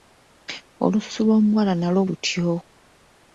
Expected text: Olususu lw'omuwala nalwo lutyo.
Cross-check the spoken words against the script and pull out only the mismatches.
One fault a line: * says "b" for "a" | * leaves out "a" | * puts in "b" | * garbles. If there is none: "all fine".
all fine